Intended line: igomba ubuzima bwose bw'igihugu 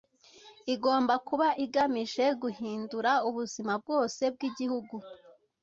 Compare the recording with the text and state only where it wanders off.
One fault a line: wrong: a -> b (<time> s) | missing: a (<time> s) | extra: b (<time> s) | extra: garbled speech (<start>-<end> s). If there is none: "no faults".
extra: kuba igamije guhindura (1.3 s)